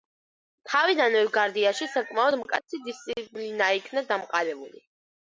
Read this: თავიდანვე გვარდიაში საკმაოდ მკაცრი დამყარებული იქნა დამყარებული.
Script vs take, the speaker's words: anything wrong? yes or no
yes